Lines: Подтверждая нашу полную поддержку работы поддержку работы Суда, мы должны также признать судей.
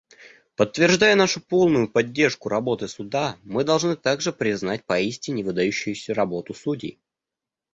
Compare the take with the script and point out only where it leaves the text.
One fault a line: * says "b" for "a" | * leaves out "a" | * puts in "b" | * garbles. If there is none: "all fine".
* leaves out "поддержку работы"
* puts in "поистине выдающуюся работу"